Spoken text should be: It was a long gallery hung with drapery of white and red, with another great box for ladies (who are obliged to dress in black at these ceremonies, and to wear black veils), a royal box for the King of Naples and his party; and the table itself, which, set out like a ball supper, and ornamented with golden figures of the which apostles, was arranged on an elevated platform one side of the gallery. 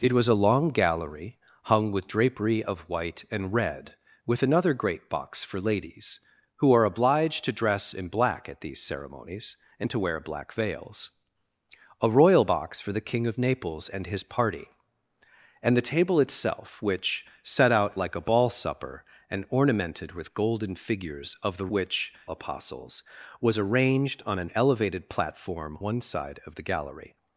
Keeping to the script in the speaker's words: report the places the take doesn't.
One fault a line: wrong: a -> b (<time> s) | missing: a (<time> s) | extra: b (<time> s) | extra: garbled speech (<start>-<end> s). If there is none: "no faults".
no faults